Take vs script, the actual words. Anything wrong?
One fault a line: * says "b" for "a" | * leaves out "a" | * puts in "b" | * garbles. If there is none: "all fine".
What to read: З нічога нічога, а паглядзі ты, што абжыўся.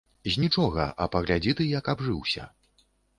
* leaves out "нічога"
* says "як" for "што"